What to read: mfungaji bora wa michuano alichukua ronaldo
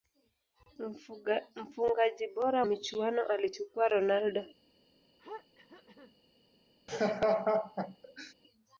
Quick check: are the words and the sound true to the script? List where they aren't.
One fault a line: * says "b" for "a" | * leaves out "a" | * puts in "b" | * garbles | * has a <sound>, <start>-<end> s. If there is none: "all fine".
* leaves out "wa"
* has a throat clearing, 5.2-6.2 s
* has a laugh, 6.9-8.3 s